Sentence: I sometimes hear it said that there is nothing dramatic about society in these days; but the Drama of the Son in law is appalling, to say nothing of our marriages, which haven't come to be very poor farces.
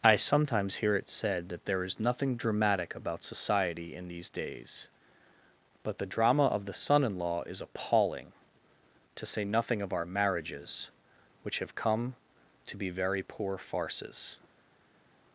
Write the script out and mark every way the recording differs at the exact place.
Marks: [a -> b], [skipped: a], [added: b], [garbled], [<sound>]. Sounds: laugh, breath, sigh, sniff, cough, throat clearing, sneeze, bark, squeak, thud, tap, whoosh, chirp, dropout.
I sometimes hear it said that there is nothing dramatic about society in these days; but the Drama of the Son in law is appalling, to say nothing of our marriages, which [haven't -> have] come to be very poor farces.